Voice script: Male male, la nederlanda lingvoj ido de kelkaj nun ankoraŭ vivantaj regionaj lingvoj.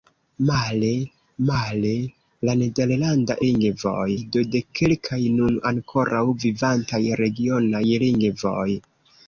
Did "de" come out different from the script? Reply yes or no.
no